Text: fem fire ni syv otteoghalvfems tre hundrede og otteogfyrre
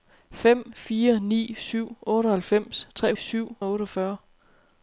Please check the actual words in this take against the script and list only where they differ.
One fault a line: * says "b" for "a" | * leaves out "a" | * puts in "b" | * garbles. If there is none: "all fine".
* says "syv" for "hundrede"